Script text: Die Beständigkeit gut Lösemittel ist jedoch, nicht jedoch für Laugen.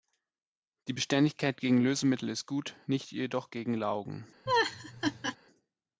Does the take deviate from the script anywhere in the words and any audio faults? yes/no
yes